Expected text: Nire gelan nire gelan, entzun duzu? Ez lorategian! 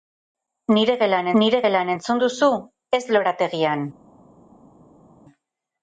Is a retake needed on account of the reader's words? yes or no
no